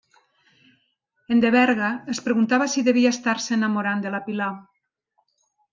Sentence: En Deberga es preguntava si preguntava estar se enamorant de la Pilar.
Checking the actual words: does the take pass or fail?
fail